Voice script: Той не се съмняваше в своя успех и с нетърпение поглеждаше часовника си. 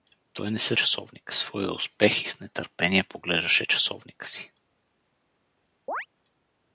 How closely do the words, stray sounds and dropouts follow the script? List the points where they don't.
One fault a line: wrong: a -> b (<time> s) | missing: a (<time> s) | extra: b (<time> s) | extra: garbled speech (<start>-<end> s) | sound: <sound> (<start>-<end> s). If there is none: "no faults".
wrong: съмняваше -> часовника (0.7 s)
sound: chirp (5.9-6.1 s)